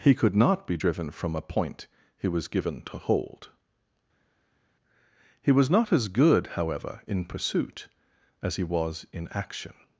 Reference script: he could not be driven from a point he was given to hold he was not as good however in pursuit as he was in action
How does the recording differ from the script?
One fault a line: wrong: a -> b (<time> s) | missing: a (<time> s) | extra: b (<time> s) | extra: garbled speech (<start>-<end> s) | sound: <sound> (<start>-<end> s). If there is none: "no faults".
no faults